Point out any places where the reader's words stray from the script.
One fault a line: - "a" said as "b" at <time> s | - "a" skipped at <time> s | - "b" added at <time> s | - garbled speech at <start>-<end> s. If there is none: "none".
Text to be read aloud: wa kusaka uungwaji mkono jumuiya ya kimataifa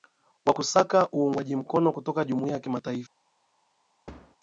- "kutoka" added at 1.9 s